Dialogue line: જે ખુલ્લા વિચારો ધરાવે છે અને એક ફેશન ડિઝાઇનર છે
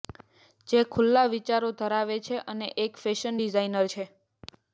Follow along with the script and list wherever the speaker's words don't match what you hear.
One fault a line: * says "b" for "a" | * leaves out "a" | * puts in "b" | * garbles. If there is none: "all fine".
all fine